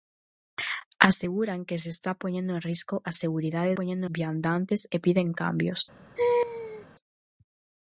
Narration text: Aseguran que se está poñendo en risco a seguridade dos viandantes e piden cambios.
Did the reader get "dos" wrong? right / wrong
wrong